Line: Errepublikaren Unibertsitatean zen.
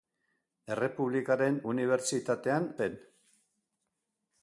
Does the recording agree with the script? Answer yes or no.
yes